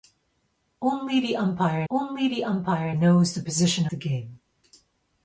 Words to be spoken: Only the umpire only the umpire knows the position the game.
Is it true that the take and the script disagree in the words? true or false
false